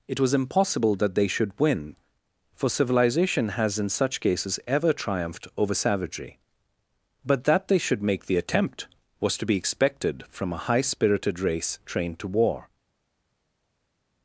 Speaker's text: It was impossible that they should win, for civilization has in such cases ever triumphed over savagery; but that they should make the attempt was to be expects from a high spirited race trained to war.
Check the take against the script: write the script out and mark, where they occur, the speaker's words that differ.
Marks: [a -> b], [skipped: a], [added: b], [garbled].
It was impossible that they should win, for civilization has in such cases ever triumphed over savagery; but that they should make the attempt was to be [expects -> expected] from a high spirited race trained to war.